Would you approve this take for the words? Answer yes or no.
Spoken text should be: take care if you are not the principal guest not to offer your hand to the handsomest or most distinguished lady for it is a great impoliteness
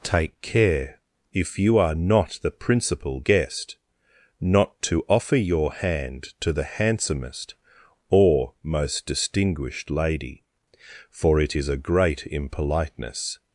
yes